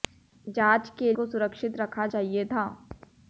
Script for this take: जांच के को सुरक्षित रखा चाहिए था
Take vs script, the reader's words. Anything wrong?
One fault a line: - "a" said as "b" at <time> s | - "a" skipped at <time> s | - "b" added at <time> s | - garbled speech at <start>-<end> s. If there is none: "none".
none